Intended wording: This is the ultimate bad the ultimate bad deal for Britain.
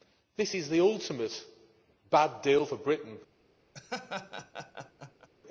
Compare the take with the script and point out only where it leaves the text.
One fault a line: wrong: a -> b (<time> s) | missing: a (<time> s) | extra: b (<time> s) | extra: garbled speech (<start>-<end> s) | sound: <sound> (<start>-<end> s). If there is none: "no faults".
missing: the ultimate bad (2.4 s)
sound: laugh (3.7-5.3 s)